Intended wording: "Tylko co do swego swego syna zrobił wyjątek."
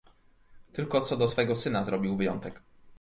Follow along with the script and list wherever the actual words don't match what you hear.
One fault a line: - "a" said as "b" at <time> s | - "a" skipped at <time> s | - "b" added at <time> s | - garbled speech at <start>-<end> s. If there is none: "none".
- "swego" skipped at 1.5 s